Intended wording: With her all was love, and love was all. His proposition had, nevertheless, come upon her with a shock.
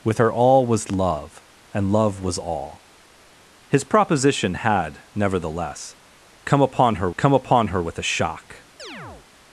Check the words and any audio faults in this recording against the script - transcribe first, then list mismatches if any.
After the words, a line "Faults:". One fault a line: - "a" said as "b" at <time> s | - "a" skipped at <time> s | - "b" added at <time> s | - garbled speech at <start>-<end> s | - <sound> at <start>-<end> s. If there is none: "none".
With her all was love, and love was all. His proposition had, nevertheless, come upon her come upon her with a shock.
Faults:
- "come upon her" added at 7.2 s
- chirp at 8.8-9.3 s